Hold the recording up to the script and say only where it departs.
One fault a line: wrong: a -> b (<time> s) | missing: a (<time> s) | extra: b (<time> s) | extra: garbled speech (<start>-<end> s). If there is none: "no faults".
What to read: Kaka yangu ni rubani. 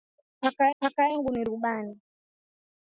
extra: kaka (0.8 s)